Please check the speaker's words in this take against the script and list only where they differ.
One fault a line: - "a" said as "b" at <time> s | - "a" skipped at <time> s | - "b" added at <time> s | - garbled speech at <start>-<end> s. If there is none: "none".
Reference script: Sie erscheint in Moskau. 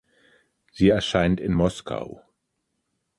none